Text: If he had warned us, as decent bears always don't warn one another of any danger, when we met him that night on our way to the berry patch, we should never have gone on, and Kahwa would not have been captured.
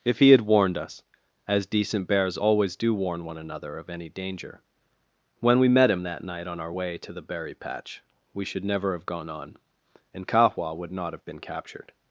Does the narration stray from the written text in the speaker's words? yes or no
yes